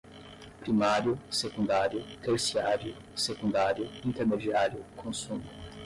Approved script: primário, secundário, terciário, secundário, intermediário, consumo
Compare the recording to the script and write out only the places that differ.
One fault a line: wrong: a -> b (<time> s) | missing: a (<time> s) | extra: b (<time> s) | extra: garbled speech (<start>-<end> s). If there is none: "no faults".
no faults